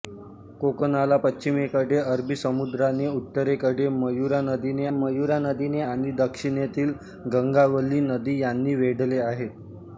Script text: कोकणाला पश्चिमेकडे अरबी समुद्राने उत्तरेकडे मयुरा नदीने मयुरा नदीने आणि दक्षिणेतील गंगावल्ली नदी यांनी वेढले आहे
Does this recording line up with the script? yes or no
yes